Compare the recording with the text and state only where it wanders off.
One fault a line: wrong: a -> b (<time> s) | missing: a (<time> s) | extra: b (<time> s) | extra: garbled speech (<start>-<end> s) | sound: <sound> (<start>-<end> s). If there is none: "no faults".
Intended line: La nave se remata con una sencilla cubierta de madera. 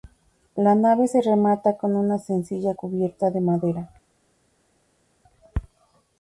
no faults